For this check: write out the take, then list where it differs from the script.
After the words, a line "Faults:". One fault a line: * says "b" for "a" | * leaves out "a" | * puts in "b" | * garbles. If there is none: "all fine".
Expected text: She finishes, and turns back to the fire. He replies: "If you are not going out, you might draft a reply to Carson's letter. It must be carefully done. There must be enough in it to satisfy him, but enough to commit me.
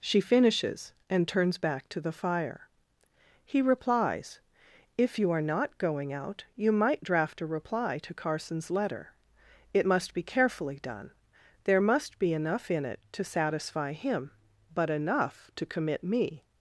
She finishes, and turns back to the fire. He replies: "If you are not going out, you might draft a reply to Carson's letter. It must be carefully done. There must be enough in it to satisfy him, but enough to commit me.
Faults:
all fine